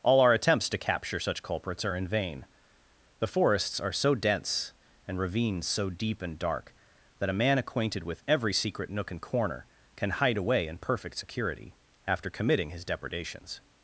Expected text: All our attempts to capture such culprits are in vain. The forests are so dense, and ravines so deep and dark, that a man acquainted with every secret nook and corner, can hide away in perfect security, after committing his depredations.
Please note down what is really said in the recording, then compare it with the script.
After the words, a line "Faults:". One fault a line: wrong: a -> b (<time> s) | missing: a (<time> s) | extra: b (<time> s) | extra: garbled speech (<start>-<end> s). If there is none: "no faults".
All our attempts to capture such culprits are in vain. The forests are so dense, and ravines so deep and dark, that a man acquainted with every secret nook and corner, can hide away in perfect security, after committing his depredations.
Faults:
no faults